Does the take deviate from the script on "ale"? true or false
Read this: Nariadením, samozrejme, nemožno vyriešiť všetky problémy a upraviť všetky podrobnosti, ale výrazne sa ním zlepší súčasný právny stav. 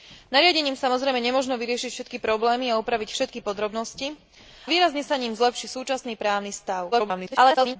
true